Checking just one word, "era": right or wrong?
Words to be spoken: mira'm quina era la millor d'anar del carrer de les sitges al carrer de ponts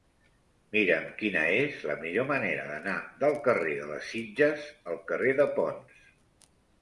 wrong